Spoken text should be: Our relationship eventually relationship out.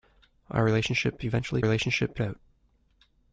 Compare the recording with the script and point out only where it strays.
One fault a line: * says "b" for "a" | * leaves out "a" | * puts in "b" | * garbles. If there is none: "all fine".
all fine